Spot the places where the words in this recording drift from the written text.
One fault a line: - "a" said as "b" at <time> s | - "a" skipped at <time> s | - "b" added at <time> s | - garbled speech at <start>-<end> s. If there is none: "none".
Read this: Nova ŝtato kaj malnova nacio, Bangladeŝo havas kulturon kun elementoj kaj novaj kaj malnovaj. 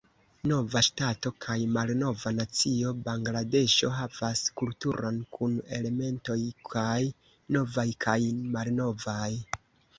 none